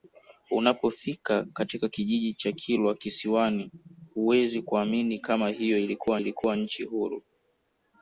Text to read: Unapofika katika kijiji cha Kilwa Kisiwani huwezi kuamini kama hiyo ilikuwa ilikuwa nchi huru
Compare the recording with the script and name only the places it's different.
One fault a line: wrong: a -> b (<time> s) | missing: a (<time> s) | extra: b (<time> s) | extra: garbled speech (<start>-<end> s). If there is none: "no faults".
no faults